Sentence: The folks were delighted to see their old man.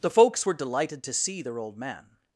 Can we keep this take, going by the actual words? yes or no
yes